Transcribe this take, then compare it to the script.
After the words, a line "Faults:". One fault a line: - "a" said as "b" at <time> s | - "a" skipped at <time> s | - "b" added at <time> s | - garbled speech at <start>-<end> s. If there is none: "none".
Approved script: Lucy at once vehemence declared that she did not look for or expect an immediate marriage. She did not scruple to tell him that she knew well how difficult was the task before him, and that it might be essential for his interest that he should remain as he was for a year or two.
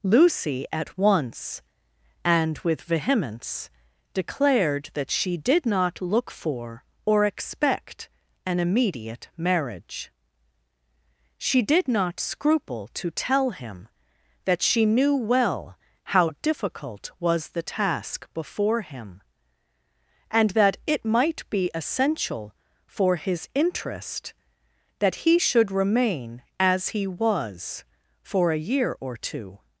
Lucy at once and with vehemence declared that she did not look for or expect an immediate marriage. She did not scruple to tell him that she knew well how difficult was the task before him, and that it might be essential for his interest that he should remain as he was for a year or two.
Faults:
- "and with" added at 2.2 s